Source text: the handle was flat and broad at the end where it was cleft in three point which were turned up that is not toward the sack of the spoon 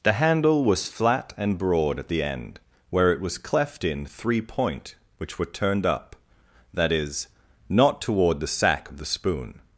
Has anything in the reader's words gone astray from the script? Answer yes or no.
no